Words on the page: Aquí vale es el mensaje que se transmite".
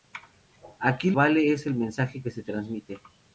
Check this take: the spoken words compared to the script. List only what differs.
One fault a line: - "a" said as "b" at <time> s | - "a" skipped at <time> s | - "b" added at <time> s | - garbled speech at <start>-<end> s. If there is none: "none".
none